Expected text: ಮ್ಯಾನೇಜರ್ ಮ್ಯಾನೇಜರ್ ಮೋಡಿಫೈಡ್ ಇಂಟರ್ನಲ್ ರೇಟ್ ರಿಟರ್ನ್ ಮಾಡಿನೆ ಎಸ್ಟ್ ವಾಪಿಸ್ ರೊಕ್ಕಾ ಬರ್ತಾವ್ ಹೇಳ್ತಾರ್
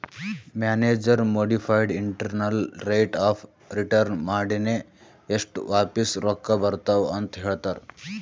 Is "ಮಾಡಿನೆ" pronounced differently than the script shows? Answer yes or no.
no